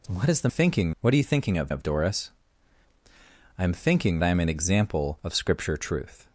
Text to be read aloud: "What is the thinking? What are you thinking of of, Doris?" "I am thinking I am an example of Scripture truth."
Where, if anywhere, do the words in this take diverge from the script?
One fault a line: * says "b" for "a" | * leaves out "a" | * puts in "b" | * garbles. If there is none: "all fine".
all fine